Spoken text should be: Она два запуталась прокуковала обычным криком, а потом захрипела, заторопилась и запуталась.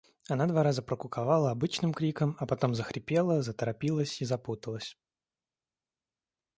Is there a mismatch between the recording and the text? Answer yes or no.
yes